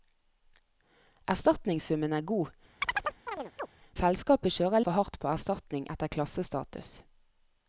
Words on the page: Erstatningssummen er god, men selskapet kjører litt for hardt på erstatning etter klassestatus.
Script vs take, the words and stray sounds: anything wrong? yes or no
yes